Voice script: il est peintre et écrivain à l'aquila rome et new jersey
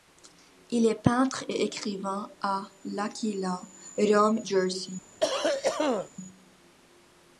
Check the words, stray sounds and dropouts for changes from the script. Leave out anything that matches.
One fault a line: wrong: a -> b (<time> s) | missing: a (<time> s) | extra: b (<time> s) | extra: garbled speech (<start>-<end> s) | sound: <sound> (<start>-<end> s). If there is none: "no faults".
missing: et new (4.4 s)
sound: cough (5.2-6.1 s)